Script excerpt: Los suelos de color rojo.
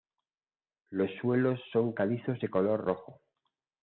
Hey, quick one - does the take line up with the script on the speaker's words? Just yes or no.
no